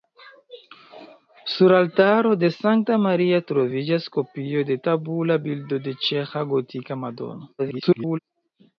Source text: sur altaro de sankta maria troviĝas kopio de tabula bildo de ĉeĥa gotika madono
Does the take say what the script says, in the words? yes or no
no